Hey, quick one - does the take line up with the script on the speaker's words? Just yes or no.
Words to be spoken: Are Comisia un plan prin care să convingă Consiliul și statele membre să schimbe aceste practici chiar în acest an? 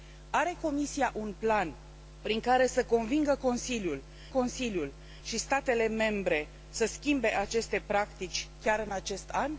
no